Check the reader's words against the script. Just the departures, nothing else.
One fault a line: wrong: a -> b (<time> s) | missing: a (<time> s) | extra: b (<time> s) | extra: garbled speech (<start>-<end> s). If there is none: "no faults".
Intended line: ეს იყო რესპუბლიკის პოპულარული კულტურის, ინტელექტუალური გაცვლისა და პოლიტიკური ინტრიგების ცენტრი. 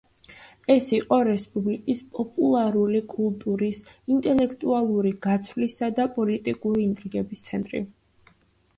no faults